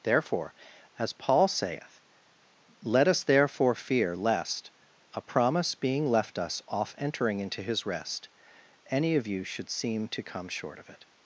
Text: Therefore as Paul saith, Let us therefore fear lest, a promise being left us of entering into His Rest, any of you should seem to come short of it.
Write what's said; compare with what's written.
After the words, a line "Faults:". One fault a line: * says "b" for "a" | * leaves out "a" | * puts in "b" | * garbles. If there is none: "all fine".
Therefore as Paul saith, Let us therefore fear lest, a promise being left us off entering into His Rest, any of you should seem to come short of it.
Faults:
* says "off" for "of"